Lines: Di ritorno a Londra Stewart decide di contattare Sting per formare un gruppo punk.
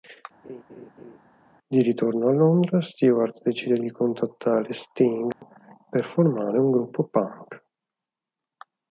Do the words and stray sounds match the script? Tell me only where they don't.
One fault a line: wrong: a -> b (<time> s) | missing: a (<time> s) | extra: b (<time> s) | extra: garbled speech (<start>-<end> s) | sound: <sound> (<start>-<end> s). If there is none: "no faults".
sound: laugh (0.4-1.2 s)
sound: dropout (5.3-5.4 s)